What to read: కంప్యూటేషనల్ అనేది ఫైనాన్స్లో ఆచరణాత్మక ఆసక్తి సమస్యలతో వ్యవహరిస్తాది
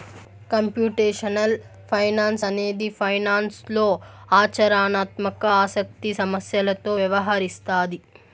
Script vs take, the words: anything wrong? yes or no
yes